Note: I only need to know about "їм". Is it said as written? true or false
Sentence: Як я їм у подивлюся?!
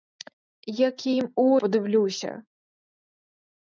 true